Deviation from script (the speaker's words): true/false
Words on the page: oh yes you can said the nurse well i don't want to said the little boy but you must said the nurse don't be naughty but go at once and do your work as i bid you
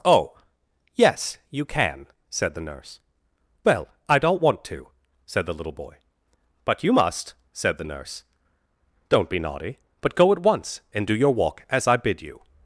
true